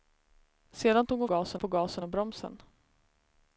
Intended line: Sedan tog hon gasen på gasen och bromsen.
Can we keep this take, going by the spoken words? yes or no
yes